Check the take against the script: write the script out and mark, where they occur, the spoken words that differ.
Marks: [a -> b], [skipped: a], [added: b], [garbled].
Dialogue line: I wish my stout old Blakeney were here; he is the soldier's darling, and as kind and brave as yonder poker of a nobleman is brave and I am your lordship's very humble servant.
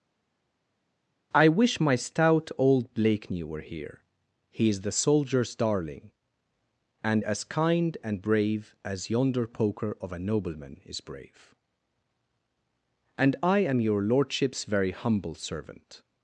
I wish my stout old Blakeney were here; he is the soldier's darling, and as kind and brave as yonder poker of a nobleman is brave and I am your lordship's very humble servant.